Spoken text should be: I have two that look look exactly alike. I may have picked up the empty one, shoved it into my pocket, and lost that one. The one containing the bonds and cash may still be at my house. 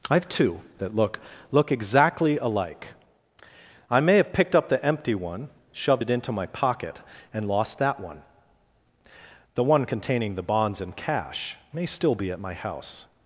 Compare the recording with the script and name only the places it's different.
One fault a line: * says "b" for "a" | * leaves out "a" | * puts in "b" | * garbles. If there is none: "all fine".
all fine